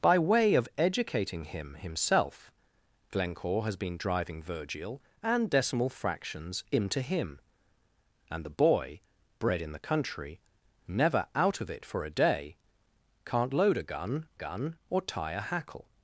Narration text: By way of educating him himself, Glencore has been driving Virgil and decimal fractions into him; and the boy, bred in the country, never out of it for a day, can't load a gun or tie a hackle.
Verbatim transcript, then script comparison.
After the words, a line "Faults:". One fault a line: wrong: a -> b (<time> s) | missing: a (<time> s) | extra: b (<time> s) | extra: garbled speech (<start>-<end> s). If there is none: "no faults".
By way of educating him himself, Glencore has been driving Virgil and decimal fractions into him; and the boy, bred in the country, never out of it for a day, can't load a gun gun or tie a hackle.
Faults:
extra: gun (14.3 s)